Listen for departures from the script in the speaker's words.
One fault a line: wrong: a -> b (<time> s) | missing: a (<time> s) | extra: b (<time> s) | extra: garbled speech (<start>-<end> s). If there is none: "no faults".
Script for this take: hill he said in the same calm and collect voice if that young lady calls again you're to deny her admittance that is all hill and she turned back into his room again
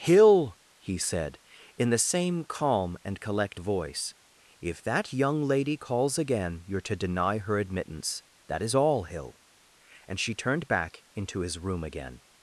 no faults